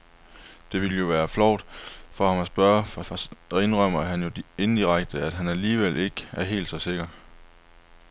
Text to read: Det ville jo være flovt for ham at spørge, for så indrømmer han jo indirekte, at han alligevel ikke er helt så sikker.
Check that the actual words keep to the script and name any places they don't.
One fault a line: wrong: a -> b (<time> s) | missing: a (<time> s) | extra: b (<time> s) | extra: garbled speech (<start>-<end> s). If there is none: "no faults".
extra: for (3.0 s)